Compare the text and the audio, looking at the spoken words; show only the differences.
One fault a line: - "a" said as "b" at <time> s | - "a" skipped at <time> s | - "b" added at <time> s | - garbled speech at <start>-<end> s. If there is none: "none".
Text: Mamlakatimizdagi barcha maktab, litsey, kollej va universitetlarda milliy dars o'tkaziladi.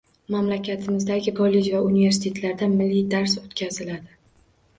- "barcha maktab litsey" skipped at 1.3 s